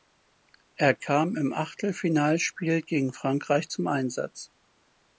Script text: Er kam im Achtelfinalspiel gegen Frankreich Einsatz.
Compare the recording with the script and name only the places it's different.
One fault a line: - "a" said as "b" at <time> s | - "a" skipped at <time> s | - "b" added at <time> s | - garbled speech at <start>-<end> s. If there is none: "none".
- "zum" added at 3.7 s